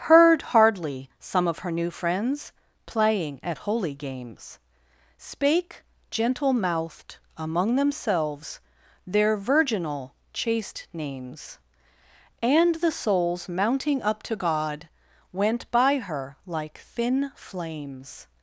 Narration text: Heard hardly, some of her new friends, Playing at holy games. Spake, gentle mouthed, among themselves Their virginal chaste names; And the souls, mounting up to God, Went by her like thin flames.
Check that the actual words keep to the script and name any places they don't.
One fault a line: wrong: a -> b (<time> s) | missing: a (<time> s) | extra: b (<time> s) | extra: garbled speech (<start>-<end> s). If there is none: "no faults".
no faults